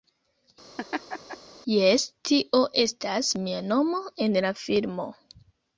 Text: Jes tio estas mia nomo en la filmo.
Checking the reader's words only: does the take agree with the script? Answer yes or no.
yes